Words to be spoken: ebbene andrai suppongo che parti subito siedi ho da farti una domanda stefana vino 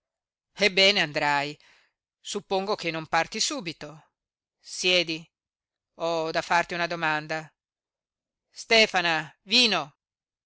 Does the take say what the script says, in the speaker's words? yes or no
no